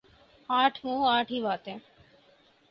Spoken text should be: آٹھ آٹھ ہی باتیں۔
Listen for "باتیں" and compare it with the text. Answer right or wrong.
right